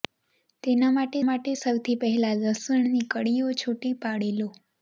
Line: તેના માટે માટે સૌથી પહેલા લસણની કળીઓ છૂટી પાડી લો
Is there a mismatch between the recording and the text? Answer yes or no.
no